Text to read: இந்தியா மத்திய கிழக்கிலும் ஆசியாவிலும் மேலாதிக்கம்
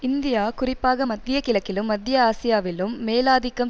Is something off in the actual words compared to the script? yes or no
yes